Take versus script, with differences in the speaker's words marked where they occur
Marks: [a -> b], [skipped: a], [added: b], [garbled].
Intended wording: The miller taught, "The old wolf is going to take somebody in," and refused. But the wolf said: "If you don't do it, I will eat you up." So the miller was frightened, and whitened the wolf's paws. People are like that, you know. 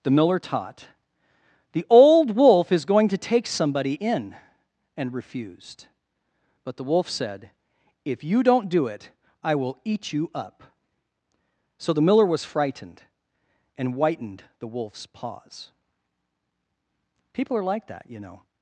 The miller taught, "The old wolf is going to take somebody in," and refused. But the wolf said: "If you don't do it, I will eat you up." So the miller was frightened, and whitened the wolf's paws. People are like that, you know.